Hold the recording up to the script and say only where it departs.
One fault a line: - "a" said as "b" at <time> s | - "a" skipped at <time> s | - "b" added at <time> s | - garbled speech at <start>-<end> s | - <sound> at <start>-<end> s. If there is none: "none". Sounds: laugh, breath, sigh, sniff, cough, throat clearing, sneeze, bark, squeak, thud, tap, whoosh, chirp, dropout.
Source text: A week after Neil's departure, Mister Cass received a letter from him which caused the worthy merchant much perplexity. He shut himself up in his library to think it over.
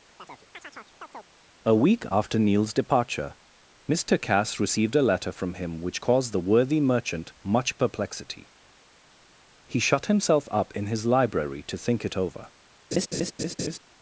- chirp at 0.2-1.3 s
- laugh at 12.9-13.8 s